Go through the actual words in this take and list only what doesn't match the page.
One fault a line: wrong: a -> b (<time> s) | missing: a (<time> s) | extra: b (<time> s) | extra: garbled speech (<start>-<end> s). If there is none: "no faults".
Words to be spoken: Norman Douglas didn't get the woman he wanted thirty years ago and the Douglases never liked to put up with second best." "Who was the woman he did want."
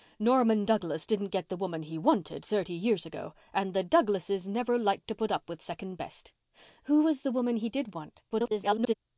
extra: garbled speech (8.3-8.9 s)